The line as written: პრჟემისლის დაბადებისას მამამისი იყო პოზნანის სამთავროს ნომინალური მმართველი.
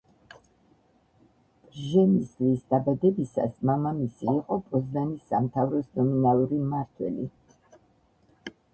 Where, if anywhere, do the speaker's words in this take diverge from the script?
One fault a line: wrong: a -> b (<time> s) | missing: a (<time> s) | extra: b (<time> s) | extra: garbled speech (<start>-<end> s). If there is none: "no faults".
no faults